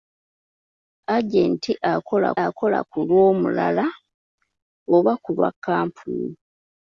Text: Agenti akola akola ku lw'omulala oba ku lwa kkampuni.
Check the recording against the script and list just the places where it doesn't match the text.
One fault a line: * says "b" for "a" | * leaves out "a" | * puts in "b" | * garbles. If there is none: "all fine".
all fine